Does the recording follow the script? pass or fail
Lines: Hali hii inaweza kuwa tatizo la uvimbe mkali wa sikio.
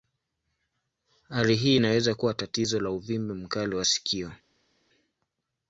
pass